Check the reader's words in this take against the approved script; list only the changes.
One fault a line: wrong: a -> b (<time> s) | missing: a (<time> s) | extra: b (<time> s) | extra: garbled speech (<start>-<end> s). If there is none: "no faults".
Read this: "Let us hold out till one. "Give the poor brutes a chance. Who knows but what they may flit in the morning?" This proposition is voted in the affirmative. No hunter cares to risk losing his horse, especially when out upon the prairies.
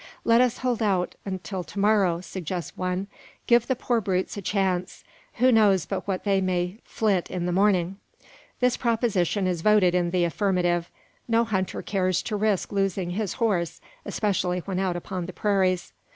extra: to morrow suggests (1.6 s)